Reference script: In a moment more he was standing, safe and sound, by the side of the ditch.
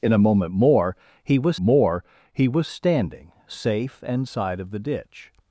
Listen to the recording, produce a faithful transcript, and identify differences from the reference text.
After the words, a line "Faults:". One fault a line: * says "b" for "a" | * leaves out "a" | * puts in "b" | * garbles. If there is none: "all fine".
In a moment more he was more he was standing, safe and side of the ditch.
Faults:
* puts in "more he was"
* leaves out "sound by the"